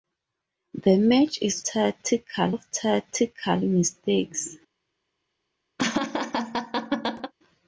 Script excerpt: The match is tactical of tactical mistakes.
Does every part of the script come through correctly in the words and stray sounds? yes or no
no